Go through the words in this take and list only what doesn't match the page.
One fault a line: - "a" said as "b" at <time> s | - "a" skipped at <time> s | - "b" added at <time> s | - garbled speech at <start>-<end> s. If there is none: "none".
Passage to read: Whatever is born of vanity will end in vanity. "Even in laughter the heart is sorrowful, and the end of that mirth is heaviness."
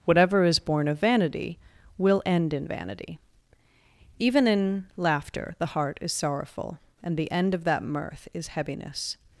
none